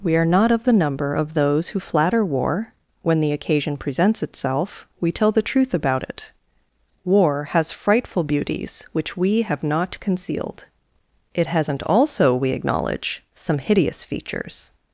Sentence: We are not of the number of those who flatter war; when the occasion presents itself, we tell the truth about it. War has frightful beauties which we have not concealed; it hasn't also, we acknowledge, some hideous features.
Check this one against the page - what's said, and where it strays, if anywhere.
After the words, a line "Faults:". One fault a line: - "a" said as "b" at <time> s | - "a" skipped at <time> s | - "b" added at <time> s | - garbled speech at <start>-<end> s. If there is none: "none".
We are not of the number of those who flatter war; when the occasion presents itself, we tell the truth about it. War has frightful beauties which we have not concealed; it hasn't also, we acknowledge, some hideous features.
Faults:
none